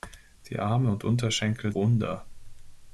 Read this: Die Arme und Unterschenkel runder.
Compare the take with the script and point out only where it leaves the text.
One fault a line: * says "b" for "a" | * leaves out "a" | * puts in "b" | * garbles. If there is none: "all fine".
all fine